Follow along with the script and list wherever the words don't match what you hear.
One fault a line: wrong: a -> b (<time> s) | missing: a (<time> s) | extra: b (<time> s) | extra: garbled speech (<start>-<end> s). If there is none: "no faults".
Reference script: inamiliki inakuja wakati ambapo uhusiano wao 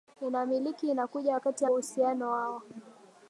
missing: ambapo (1.7 s)